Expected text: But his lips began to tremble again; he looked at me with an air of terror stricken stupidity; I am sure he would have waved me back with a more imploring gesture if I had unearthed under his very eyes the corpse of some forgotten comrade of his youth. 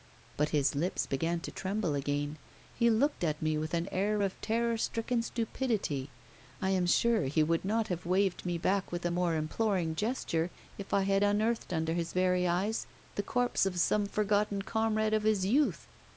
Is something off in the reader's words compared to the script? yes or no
yes